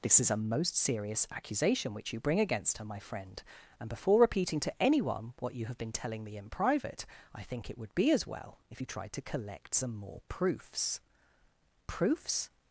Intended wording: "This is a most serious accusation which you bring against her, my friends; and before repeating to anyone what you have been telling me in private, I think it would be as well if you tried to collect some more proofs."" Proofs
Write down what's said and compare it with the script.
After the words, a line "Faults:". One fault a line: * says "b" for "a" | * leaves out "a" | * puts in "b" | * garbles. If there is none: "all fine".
"This is a most serious accusation which you bring against her, my friend; and before repeating to anyone what you have been telling me in private, I think it would be as well if you tried to collect some more proofs."" Proofs
Faults:
* says "friend" for "friends"